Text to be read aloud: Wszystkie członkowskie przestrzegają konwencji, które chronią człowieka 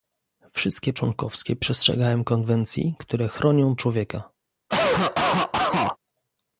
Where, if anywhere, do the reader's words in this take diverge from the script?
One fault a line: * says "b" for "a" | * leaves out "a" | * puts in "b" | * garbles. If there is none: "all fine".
all fine